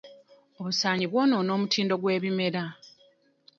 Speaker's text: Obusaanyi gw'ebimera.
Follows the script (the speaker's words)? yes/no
no